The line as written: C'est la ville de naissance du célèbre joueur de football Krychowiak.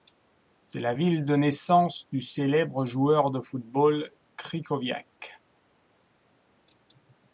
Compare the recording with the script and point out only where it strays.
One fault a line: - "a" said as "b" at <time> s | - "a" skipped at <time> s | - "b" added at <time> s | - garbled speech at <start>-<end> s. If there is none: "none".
none